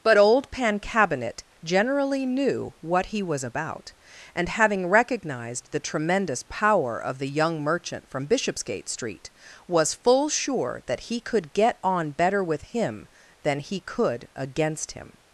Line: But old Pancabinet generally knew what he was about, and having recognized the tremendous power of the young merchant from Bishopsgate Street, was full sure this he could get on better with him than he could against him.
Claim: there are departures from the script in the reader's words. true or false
true